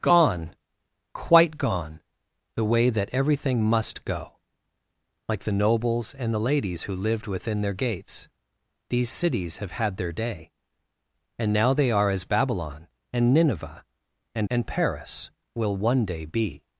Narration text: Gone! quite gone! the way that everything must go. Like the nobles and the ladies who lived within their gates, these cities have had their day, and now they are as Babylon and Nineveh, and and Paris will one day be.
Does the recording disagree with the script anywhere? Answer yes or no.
no